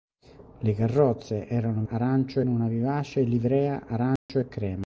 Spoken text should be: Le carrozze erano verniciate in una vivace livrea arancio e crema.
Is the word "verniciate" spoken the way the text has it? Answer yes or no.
no